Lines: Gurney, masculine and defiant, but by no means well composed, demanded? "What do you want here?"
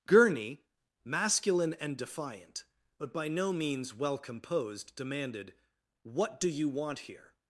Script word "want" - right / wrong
right